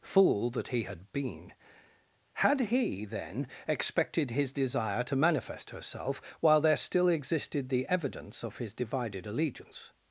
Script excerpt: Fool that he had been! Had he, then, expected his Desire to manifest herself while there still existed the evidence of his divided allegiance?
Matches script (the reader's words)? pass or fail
pass